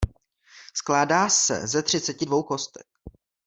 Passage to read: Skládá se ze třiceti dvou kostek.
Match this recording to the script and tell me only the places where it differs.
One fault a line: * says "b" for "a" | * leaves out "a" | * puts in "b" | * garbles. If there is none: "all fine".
all fine